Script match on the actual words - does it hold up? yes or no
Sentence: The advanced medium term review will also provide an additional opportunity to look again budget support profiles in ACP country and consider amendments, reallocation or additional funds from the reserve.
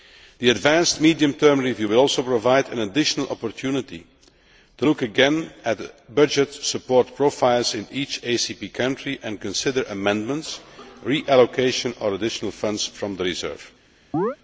no